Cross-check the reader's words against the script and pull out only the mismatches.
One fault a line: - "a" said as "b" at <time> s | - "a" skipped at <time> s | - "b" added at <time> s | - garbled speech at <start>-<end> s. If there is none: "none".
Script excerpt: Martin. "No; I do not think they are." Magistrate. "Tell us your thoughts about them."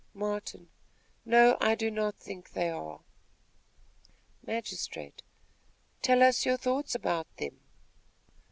none